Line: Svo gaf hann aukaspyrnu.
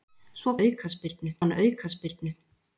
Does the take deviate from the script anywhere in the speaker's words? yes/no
yes